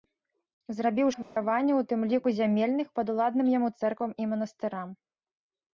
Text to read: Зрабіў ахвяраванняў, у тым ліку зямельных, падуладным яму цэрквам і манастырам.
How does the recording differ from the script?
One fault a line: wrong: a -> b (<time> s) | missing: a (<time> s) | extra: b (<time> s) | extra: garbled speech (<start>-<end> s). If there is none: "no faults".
no faults